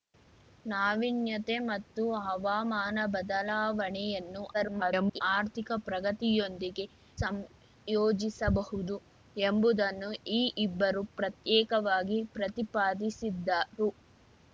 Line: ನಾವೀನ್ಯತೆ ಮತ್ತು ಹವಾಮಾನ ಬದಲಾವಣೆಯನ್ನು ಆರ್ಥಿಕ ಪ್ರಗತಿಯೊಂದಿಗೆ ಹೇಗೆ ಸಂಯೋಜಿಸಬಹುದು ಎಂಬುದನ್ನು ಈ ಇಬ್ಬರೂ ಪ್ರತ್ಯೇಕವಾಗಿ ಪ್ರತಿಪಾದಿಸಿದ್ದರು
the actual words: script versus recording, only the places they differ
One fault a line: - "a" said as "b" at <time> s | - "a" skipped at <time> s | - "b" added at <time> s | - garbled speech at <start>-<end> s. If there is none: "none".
- garbled speech at 4.5-5.2 s
- "ಹೇಗೆ" skipped at 6.9 s